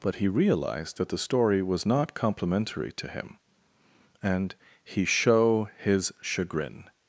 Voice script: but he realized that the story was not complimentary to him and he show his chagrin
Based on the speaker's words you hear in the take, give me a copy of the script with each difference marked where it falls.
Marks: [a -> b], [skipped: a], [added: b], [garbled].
but he realized that the story was not complimentary to him and he show his chagrin